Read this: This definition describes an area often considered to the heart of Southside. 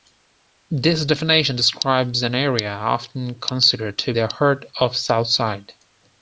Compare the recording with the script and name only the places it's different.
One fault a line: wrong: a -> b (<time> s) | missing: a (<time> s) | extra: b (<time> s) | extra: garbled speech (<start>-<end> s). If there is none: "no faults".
no faults